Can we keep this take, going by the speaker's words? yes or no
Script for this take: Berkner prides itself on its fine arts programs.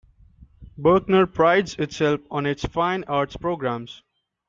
yes